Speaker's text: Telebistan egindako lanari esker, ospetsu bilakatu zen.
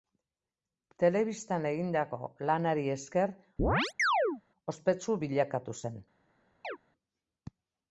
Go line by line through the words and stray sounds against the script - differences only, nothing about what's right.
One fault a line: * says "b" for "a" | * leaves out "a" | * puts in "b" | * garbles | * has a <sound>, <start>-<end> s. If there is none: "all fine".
* has a chirp, 3.6-4.4 s
* has a chirp, 6.6-6.8 s